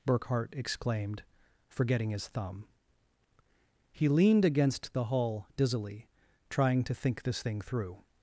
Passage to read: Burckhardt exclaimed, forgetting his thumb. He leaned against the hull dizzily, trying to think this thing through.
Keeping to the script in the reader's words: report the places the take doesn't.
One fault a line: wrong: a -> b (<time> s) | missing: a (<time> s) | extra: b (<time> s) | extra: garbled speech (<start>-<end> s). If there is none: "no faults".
no faults